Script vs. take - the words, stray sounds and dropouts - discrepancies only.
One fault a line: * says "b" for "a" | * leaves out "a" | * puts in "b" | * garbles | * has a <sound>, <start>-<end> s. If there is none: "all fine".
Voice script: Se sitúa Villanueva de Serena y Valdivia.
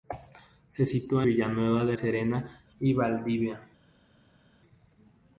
all fine